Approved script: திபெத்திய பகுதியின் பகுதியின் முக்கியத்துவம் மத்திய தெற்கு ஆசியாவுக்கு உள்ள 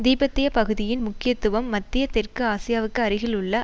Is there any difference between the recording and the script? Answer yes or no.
yes